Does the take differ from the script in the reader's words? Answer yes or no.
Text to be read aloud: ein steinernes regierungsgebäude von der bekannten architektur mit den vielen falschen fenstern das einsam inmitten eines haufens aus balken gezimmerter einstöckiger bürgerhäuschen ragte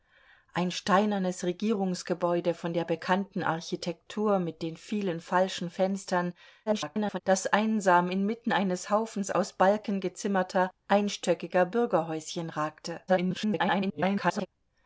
yes